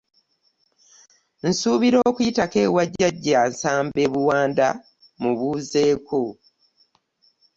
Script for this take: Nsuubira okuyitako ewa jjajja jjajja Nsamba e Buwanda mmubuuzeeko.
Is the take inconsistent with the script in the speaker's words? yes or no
yes